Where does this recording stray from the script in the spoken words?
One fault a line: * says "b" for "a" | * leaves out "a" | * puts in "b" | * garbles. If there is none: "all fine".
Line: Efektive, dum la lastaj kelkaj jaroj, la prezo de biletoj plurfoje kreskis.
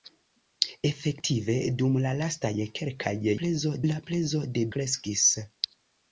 * says "prezo" for "jaroj"
* leaves out "biletoj plurfoje"